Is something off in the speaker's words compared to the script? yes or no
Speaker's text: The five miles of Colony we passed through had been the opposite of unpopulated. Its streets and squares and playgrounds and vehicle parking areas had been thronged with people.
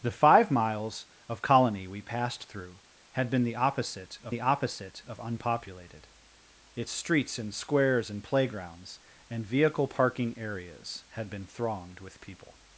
yes